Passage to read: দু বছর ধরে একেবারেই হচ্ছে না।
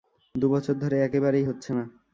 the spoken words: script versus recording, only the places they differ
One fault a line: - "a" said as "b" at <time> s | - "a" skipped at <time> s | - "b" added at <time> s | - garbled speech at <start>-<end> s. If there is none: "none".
none